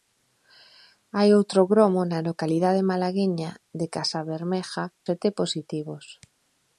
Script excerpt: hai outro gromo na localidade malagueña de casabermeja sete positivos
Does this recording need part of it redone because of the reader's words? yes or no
no